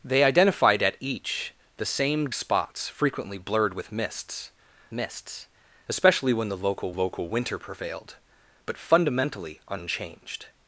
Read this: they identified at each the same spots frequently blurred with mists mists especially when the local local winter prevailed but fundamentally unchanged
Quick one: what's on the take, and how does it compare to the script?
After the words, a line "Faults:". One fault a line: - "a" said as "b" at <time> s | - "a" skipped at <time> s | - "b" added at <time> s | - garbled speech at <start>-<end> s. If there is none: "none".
they identified at each the same spots frequently blurred with mists mists especially when the local local winter prevailed but fundamentally unchanged
Faults:
none